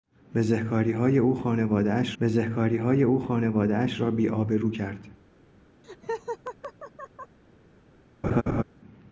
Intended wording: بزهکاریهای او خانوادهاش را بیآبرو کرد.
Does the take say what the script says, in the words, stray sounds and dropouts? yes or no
no